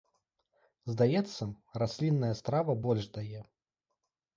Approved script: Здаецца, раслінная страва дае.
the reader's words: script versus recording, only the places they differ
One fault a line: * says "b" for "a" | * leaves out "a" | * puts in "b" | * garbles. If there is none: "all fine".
* puts in "больш"